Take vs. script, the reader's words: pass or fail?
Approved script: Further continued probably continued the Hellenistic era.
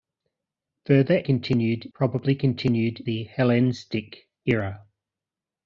pass